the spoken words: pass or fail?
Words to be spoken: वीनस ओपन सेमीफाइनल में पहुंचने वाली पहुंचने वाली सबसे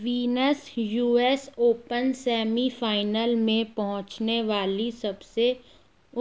fail